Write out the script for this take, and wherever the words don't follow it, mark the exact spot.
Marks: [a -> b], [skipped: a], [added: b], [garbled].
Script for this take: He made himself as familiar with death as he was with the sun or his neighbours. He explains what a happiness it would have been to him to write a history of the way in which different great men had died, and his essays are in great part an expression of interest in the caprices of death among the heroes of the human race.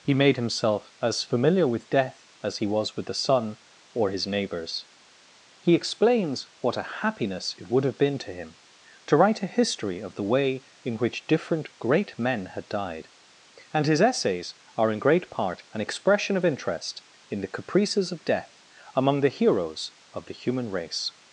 He made himself as familiar with death as he was with the sun or his neighbours. He explains what a happiness it would have been to him to write a history of the way in which different great men had died, and his essays are in great part an expression of interest in the caprices of death among the heroes of the human race.